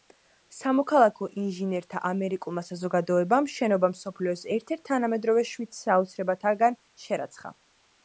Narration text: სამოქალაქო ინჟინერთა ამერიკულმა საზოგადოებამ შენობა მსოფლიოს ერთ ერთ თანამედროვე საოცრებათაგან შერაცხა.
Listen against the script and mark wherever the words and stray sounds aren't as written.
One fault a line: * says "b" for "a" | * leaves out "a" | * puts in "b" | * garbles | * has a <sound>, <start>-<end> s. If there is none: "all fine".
* puts in "შვიდ"